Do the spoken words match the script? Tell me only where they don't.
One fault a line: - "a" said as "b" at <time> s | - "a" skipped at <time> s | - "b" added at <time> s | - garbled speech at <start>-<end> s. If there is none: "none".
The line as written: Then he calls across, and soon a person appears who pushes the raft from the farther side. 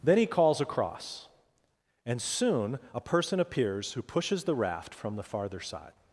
none